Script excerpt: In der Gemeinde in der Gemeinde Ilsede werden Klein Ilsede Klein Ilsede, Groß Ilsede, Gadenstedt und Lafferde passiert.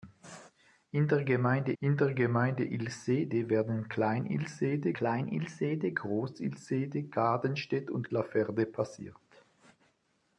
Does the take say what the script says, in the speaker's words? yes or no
yes